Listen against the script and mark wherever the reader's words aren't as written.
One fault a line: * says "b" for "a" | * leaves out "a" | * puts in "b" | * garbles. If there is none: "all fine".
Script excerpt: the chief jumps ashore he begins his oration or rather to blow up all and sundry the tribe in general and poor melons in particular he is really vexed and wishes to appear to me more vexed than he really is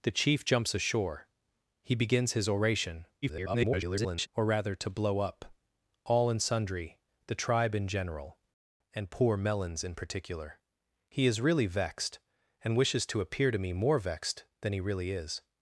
* garbles